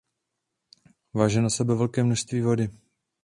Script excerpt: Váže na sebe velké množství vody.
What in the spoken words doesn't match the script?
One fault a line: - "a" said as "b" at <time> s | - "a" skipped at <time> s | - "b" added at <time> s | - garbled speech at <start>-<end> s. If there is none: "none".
none